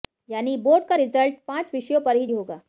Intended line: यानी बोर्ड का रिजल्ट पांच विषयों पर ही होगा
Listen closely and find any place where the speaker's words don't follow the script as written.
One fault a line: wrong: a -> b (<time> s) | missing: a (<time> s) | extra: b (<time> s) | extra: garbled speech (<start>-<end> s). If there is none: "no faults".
no faults